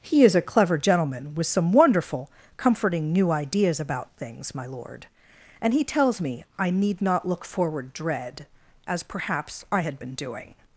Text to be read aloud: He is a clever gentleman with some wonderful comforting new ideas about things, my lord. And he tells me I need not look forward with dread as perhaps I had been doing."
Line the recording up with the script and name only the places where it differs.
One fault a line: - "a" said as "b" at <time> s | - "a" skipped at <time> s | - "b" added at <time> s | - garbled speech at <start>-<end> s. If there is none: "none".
- "with" skipped at 7.9 s